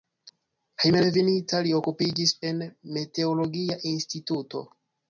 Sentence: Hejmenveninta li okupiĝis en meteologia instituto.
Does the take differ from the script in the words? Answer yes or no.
no